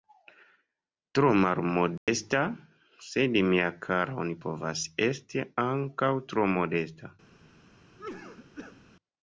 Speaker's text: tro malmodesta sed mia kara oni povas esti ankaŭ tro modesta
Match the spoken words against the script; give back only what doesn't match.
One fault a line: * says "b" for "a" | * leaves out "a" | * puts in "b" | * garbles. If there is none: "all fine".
all fine